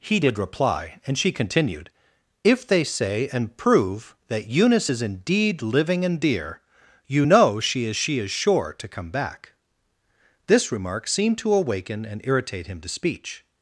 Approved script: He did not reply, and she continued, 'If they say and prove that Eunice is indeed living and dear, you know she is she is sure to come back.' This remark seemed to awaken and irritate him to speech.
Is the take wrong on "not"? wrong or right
wrong